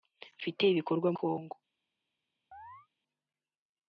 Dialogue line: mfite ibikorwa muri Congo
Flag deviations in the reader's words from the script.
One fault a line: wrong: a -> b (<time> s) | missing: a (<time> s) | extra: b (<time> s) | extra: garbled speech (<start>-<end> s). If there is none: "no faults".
missing: muri (1.1 s)